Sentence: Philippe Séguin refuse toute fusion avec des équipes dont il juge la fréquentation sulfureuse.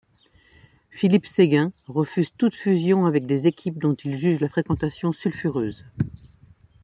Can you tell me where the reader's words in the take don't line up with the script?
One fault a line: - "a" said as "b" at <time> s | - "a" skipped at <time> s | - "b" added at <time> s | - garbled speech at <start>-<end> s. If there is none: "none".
none